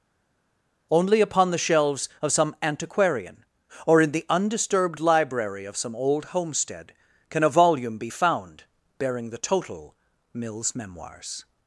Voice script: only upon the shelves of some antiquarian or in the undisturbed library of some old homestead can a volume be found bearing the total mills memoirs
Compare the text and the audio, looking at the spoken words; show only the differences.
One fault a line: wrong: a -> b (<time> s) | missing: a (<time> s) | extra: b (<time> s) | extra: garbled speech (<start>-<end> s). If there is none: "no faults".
no faults